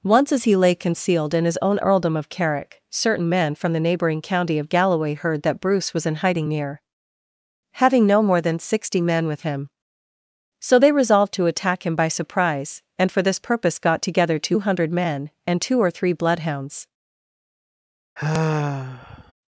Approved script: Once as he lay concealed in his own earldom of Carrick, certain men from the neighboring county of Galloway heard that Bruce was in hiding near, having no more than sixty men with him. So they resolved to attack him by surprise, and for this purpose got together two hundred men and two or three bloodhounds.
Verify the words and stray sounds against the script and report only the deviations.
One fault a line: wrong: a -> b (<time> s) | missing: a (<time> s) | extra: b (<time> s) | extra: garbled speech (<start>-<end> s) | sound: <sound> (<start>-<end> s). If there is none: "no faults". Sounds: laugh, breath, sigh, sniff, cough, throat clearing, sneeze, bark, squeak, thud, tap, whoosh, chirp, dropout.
sound: sigh (18.2-19.3 s)